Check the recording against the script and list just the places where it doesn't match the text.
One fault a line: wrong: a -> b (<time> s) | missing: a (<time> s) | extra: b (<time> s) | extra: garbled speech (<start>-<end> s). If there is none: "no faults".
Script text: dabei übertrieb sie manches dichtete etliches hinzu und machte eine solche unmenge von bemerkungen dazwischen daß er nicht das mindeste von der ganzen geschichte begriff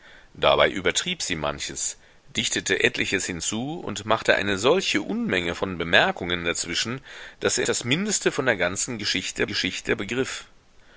missing: nicht (7.7 s)
extra: geschichte (9.5 s)